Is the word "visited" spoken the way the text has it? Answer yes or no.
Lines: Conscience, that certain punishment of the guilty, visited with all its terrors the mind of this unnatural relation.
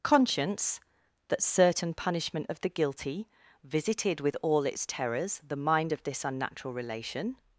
yes